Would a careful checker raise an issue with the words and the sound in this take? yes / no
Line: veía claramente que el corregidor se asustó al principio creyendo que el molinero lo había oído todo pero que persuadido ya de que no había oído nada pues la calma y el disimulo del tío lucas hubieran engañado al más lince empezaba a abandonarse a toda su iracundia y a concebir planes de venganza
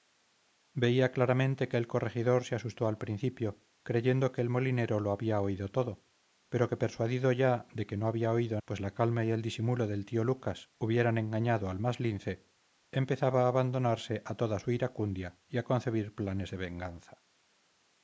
yes